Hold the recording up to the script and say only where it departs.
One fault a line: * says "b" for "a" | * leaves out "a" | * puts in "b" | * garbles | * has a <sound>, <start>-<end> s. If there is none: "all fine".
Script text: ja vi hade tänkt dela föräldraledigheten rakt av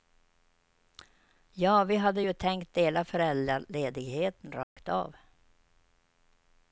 * puts in "ju"
* has a dropout, 4.6-4.8 s